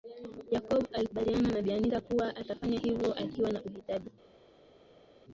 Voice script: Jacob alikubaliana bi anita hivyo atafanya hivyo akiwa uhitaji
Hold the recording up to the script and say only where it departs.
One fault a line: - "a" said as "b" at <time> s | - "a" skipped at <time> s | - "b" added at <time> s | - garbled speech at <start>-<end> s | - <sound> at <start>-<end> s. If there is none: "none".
- "na" added at 1.5 s
- "hivyo" said as "kuwa" at 2.0 s
- "na" added at 3.5 s